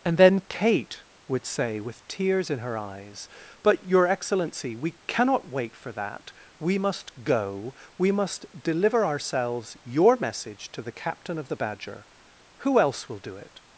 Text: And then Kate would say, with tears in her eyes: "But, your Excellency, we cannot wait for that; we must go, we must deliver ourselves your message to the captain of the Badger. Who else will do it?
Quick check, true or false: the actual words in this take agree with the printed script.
true